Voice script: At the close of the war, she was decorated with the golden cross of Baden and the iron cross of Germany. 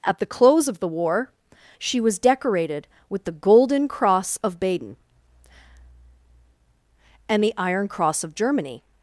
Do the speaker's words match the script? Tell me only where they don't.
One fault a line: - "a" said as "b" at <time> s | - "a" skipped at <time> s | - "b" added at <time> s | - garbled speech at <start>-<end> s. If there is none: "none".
none